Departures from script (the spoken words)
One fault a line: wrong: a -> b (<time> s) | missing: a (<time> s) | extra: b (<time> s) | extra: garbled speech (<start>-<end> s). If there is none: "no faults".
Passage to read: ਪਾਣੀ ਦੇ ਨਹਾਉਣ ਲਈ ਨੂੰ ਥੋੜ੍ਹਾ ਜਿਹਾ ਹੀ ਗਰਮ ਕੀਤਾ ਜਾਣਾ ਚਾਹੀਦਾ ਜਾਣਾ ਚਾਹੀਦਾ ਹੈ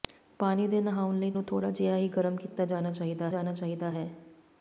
no faults